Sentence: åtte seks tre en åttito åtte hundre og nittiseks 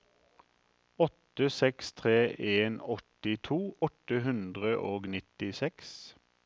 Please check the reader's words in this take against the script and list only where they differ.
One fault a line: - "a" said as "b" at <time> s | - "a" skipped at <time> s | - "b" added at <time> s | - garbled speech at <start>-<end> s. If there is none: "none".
none